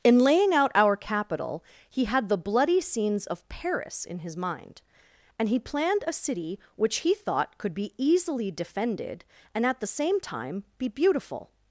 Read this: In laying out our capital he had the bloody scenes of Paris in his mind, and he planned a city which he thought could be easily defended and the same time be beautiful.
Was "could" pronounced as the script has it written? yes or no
yes